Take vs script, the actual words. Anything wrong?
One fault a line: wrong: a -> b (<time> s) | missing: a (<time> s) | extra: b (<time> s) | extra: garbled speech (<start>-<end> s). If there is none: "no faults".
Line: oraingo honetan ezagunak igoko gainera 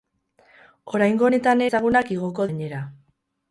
no faults